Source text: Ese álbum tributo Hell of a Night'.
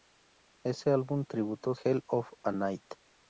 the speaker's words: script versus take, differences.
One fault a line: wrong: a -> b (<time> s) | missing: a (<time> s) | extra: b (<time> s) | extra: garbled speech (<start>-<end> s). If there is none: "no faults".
no faults